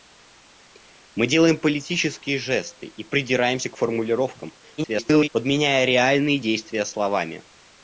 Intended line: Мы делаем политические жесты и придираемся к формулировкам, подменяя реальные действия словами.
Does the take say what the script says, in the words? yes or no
no